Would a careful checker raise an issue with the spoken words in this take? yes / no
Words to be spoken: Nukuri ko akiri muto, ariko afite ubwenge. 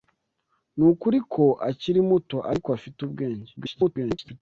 yes